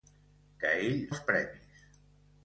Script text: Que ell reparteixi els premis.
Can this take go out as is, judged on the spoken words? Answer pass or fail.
fail